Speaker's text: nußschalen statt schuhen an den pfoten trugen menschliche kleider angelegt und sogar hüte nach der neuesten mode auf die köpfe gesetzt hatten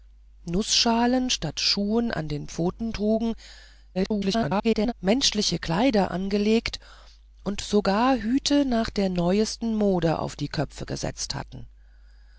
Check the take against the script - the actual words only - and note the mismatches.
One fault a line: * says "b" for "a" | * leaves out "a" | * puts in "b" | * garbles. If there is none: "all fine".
* garbles